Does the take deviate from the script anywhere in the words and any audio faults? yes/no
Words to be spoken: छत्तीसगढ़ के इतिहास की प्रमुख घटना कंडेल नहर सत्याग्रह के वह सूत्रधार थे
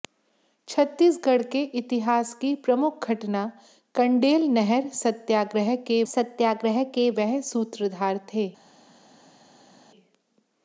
yes